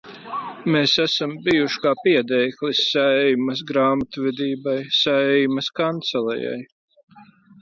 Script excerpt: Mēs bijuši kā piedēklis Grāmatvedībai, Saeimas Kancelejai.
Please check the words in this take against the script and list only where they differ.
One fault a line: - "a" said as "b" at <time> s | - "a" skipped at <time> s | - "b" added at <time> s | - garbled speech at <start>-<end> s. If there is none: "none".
- "esam" added at 1.0 s
- "Saeimas" added at 2.9 s